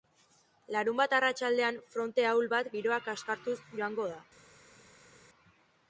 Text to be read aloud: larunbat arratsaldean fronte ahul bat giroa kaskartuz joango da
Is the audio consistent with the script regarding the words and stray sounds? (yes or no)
yes